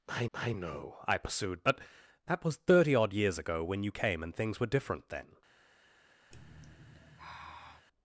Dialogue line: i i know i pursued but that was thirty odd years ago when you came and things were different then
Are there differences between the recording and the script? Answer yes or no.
no